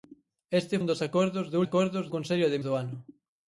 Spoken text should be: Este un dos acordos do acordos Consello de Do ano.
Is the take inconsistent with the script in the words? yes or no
no